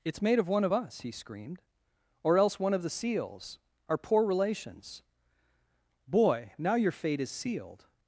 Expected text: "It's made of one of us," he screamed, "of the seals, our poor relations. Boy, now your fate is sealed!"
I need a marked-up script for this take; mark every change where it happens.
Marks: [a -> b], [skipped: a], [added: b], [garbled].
"It's made of one of us," he screamed, [added: or else one] "of the seals, our poor relations. Boy, now your fate is sealed!"